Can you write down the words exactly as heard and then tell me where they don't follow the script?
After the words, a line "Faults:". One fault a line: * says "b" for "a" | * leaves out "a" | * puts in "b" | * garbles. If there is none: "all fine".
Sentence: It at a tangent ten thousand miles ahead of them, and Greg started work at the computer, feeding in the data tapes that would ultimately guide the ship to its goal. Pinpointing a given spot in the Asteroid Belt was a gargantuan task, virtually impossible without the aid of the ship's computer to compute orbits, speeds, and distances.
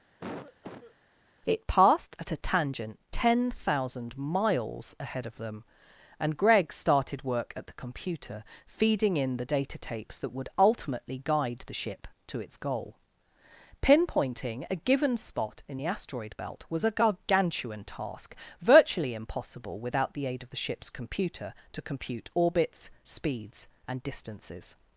It passed at a tangent ten thousand miles ahead of them, and Greg started work at the computer, feeding in the data tapes that would ultimately guide the ship to its goal. Pinpointing a given spot in the Asteroid Belt was a gargantuan task, virtually impossible without the aid of the ship's computer to compute orbits, speeds, and distances.
Faults:
* puts in "passed"